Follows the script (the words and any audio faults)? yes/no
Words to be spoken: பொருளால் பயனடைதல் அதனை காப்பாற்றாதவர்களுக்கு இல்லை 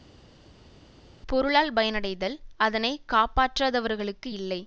yes